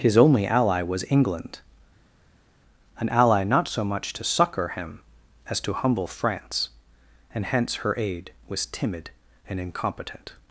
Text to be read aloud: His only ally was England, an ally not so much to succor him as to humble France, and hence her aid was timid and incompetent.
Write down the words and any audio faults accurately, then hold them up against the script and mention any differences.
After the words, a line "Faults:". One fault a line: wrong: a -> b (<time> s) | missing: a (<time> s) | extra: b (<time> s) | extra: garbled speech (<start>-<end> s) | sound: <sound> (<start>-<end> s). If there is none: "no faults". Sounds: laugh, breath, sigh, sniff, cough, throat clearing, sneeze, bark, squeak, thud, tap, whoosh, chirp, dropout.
His only ally was England, an ally not so much to succor him as to humble France, and hence her aid was timid and incompetent.
Faults:
no faults